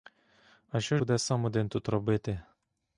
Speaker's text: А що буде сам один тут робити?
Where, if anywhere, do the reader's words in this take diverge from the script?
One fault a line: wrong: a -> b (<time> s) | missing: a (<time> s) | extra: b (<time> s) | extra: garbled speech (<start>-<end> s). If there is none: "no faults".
no faults